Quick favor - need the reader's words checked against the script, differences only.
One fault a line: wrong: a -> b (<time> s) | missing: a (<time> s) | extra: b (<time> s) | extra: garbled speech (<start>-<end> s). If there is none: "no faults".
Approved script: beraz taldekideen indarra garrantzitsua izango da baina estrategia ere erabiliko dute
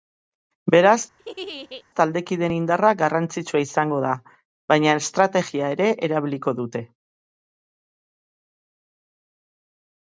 no faults